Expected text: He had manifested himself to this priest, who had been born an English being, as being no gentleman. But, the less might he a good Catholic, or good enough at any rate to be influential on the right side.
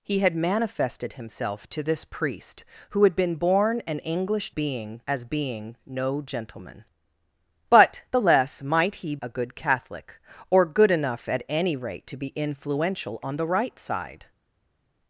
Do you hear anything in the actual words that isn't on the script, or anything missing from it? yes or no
no